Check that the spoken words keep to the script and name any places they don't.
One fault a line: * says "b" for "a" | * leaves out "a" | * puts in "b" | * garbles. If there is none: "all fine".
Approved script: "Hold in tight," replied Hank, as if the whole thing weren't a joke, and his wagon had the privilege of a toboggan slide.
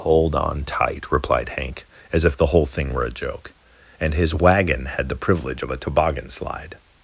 * says "on" for "in"
* says "were" for "weren't"